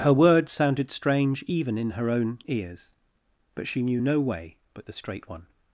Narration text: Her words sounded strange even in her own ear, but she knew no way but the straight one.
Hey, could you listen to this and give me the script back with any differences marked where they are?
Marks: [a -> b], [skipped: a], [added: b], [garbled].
Her words sounded strange even in her own [ear, -> ears] but she knew no way but the straight one.